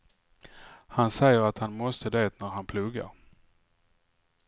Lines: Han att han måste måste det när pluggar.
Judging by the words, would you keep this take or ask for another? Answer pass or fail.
fail